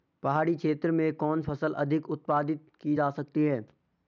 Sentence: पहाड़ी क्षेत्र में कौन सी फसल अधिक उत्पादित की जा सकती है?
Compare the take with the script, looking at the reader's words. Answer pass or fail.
fail